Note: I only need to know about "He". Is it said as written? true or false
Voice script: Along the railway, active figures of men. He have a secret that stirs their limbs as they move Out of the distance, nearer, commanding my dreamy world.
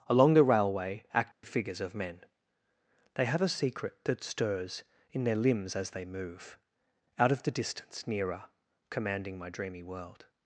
false